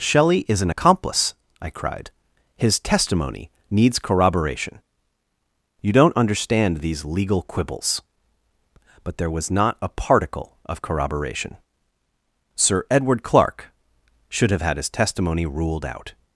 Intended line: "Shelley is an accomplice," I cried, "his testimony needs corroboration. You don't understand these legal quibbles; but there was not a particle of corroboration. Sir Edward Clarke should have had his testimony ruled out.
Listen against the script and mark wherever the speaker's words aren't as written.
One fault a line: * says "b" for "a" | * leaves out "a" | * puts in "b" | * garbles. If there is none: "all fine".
all fine